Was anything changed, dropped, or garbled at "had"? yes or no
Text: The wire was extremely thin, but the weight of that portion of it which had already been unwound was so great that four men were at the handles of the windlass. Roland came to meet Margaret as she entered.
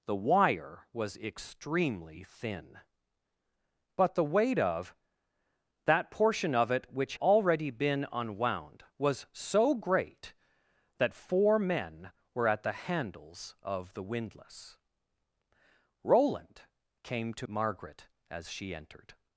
yes